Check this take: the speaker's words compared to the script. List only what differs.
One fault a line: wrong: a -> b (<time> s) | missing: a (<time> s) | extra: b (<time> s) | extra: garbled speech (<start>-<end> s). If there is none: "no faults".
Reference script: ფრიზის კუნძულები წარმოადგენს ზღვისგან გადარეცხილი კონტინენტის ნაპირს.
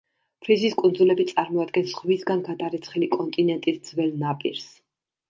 extra: ძველ (3.9 s)